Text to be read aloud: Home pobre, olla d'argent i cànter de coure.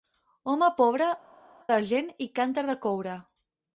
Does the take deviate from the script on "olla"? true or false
true